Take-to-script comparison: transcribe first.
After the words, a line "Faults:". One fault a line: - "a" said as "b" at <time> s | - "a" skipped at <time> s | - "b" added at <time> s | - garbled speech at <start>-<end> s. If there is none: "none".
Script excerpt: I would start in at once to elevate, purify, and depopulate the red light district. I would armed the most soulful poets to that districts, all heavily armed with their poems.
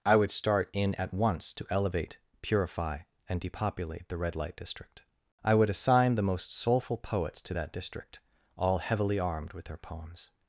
I would start in at once to elevate, purify, and depopulate the red light district. I would assign the most soulful poets to that district, all heavily armed with their poems.
Faults:
- "armed" said as "assign" at 5.7 s
- "districts" said as "district" at 7.7 s